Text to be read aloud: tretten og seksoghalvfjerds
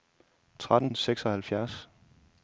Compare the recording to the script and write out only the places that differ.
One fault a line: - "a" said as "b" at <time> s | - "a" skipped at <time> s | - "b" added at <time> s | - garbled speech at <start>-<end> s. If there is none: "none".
none